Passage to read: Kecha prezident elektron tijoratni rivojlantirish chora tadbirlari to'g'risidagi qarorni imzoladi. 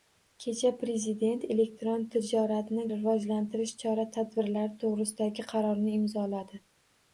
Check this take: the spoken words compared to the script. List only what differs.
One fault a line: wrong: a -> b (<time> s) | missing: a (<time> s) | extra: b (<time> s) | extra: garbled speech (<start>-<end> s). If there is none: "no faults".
no faults